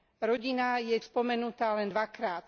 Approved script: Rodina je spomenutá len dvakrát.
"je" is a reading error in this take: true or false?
false